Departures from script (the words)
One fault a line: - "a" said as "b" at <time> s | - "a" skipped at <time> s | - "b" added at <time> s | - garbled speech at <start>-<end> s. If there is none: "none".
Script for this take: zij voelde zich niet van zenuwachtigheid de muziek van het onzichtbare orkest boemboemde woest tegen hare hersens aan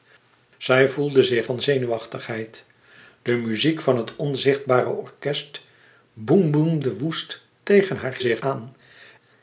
- "niet" skipped at 1.5 s
- "hersens" said as "zich" at 8.2 s